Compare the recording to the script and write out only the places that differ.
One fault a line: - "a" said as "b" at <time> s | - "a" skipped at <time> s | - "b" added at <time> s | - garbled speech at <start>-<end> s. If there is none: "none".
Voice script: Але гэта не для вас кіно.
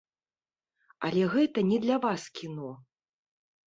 none